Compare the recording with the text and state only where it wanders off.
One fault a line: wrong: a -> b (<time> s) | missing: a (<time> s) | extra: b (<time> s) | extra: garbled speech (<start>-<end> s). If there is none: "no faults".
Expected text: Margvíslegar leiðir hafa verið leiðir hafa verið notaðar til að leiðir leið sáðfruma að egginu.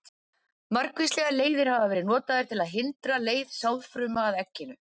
missing: leiðir hafa verið (2.1 s)
wrong: leiðir -> hindra (2.8 s)